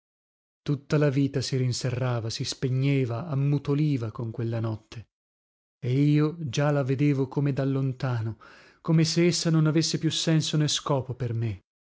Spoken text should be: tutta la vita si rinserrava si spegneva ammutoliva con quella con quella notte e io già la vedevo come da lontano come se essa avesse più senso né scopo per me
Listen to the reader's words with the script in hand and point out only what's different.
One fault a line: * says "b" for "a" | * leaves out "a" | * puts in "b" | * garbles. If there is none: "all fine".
* leaves out "con quella"
* puts in "non"